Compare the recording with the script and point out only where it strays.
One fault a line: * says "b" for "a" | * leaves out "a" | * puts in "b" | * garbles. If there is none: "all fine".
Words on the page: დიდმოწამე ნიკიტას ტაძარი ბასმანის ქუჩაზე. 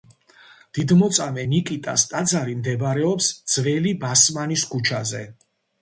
* puts in "მდებარეობს ძველი"